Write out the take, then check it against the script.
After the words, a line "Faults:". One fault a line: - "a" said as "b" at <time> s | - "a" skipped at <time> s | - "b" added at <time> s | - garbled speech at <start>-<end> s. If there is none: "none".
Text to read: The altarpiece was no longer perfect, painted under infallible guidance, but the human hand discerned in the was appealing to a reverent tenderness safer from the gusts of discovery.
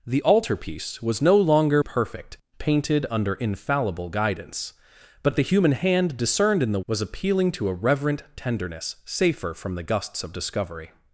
The altarpiece was no longer perfect, painted under infallible guidance, but the human hand discerned in the was appealing to a reverent tenderness safer from the gusts of discovery.
Faults:
none